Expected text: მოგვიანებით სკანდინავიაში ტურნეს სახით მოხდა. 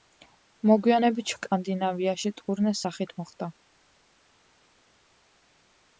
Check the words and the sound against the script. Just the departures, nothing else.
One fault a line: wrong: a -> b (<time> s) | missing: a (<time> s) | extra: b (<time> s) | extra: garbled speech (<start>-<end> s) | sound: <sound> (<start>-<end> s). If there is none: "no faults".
no faults